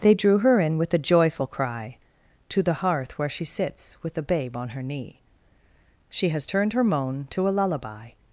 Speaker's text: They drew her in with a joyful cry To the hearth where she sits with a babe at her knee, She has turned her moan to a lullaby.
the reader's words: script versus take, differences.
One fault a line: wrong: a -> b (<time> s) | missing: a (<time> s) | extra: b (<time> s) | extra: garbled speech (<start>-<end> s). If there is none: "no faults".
wrong: at -> on (4.6 s)